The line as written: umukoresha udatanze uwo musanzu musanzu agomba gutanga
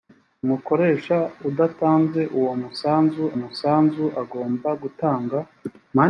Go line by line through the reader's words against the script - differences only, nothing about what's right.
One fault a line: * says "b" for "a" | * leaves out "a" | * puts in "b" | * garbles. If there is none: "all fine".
all fine